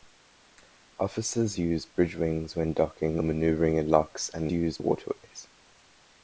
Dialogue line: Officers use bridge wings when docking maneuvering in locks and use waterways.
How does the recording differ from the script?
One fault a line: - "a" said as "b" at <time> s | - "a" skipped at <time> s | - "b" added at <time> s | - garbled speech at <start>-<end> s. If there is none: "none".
none